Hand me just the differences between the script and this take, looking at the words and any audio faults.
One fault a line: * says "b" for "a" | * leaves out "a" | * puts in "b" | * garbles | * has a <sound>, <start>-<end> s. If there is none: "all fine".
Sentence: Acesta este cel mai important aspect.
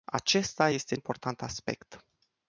* leaves out "cel mai"